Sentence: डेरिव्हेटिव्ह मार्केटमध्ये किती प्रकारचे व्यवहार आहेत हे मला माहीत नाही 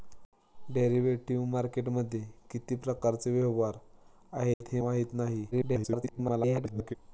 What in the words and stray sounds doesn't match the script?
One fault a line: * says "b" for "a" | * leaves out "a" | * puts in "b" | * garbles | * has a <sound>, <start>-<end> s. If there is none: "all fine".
* has a dropout, 4.5-4.6 s
* leaves out "मला"
* garbles